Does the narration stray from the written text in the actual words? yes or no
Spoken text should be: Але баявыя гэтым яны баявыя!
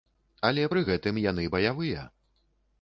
yes